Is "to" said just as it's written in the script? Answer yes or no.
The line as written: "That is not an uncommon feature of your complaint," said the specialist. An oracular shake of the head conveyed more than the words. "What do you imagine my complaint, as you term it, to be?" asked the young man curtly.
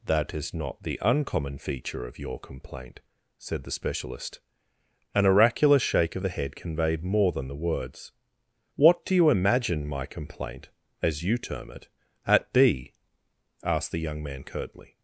no